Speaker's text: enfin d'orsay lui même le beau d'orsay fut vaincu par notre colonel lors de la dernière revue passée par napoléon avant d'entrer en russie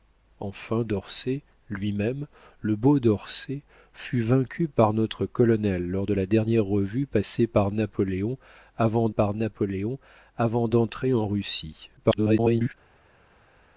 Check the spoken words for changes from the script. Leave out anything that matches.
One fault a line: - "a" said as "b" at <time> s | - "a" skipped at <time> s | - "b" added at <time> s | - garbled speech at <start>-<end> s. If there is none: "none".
- "par napoléon avant" added at 9.1 s
- garbled speech at 12.0-12.7 s